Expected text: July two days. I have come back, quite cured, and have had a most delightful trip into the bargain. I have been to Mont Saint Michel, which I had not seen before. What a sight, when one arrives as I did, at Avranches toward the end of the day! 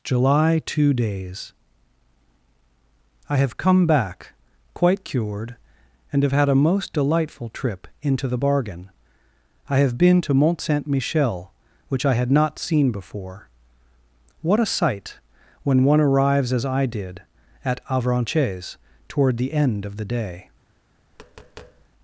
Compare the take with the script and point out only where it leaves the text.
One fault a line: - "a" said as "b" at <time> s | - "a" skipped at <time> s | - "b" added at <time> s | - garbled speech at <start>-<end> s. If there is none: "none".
none